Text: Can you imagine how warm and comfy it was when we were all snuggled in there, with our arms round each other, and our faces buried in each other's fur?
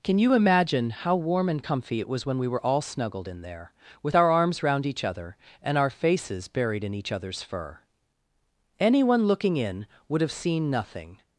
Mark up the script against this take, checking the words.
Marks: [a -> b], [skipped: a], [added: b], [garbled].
Can you imagine how warm and comfy it was when we were all snuggled in there, with our arms round each other, and our faces buried in each other's fur? [added: Anyone looking in would have seen nothing]